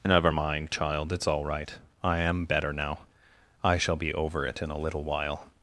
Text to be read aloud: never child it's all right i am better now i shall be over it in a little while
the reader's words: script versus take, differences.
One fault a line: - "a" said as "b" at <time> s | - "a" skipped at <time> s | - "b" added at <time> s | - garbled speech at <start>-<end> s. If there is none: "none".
- "mind" added at 0.3 s